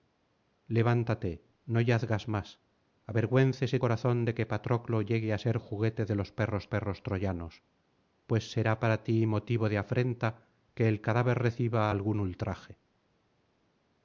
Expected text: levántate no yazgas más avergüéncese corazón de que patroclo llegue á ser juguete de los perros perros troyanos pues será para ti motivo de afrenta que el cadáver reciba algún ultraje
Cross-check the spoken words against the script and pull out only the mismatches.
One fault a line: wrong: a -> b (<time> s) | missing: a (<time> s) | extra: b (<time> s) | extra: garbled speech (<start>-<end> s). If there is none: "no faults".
no faults